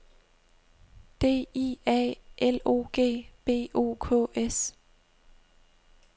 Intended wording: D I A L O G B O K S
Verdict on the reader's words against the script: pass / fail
pass